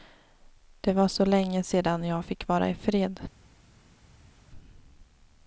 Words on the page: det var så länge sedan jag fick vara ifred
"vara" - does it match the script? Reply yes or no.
yes